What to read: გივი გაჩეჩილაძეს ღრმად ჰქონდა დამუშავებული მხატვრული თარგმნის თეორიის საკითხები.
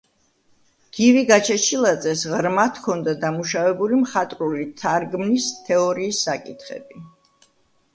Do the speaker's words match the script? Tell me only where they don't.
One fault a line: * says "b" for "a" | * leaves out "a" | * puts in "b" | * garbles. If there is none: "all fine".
all fine